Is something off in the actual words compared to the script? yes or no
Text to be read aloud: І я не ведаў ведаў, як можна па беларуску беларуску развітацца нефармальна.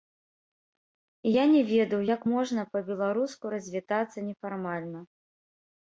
yes